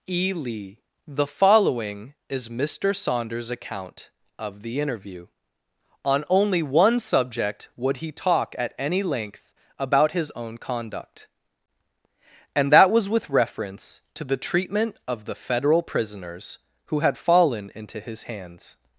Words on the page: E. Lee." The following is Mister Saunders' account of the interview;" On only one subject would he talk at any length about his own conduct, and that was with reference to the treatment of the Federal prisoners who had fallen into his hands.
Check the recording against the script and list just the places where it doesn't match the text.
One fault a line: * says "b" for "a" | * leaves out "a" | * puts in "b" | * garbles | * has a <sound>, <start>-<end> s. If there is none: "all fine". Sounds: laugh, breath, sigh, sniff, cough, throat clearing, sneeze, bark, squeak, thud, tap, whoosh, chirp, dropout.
all fine